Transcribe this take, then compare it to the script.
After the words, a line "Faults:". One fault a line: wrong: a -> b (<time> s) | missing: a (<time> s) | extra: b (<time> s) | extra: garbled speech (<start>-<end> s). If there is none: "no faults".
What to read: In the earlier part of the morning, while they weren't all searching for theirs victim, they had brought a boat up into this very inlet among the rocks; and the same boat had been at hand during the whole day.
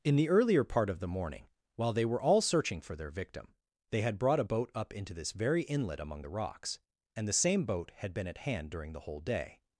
In the earlier part of the morning, while they were all searching for their victim, they had brought a boat up into this very inlet among the rocks; and the same boat had been at hand during the whole day.
Faults:
wrong: weren't -> were (2.1 s)
wrong: theirs -> their (3.0 s)